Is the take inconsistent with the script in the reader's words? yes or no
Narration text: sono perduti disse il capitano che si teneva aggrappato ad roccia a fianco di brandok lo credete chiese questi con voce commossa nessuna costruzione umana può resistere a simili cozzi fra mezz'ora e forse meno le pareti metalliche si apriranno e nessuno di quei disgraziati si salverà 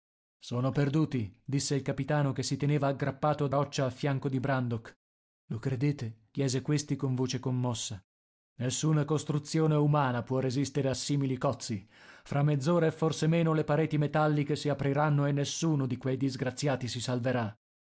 no